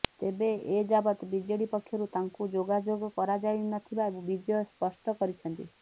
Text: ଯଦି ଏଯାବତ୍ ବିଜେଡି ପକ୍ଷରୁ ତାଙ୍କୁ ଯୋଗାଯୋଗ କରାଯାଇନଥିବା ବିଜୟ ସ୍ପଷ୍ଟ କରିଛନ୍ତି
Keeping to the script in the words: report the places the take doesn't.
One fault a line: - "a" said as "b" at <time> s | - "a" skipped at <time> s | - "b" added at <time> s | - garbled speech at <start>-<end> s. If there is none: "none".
- "ଯଦି" said as "ତେବେ" at 0.2 s